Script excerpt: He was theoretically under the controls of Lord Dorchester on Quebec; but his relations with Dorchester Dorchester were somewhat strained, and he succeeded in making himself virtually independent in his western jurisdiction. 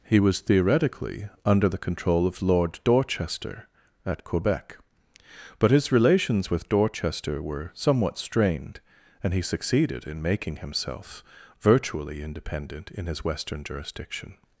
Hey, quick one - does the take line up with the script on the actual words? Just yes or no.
no